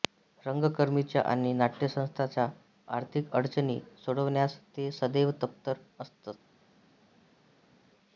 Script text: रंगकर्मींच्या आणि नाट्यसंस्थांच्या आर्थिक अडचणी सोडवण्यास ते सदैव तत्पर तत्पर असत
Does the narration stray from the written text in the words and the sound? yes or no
yes